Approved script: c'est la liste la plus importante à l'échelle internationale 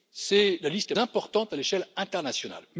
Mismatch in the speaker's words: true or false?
true